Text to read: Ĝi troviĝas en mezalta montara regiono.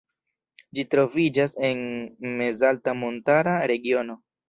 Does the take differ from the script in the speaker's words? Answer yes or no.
no